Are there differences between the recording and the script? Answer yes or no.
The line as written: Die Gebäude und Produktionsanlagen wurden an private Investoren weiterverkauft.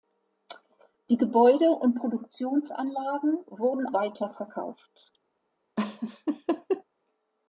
yes